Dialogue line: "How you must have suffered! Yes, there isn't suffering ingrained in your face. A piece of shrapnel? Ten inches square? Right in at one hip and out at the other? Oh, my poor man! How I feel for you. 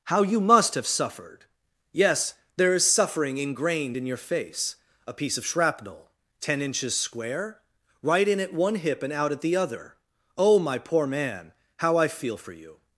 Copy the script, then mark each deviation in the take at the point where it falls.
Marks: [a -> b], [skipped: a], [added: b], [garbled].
"How you must have suffered! Yes, there [isn't -> is] suffering ingrained in your face. A piece of shrapnel? Ten inches square? Right in at one hip and out at the other? Oh, my poor man! How I feel for you.